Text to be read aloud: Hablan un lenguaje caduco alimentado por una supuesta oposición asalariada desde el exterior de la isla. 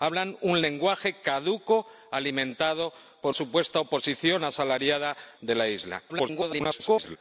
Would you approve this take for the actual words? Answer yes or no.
no